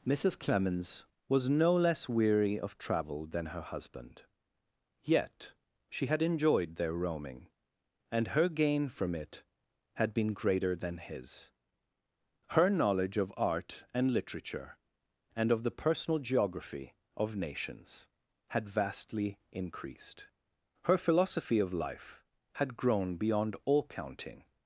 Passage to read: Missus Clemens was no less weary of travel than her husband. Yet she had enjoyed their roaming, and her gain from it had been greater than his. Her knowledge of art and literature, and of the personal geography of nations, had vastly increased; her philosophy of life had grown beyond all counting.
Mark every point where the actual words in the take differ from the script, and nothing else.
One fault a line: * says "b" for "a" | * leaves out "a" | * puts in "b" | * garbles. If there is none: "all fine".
all fine